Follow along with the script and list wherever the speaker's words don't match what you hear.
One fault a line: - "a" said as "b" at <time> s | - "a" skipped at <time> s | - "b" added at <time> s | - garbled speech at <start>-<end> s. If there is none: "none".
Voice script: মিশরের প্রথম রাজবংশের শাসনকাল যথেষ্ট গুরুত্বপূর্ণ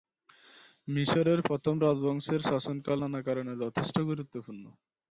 - "নানা কারণে" added at 3.0 s